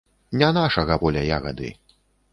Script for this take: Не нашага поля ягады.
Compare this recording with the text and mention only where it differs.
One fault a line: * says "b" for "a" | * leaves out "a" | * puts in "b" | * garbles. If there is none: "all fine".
all fine